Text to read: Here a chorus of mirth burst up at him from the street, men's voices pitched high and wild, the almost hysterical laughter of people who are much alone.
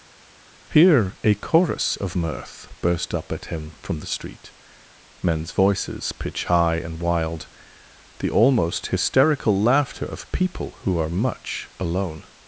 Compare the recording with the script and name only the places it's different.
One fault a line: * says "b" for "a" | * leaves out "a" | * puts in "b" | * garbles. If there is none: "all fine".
* says "pitch" for "pitched"